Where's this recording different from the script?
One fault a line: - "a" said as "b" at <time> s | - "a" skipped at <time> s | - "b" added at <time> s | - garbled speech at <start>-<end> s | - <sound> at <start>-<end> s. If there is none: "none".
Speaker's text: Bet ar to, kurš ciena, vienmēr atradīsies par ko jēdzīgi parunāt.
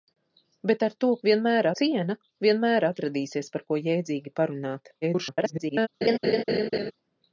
- "kurš" said as "vienmēr" at 1.3 s
- garbled speech at 5.0-5.9 s
- laugh at 6.0-6.9 s